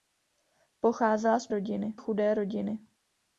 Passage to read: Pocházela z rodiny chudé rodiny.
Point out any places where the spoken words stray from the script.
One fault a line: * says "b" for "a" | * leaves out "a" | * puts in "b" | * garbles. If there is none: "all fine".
all fine